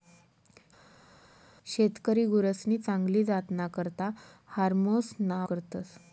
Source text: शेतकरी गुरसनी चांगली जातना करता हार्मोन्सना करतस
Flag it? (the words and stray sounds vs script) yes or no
no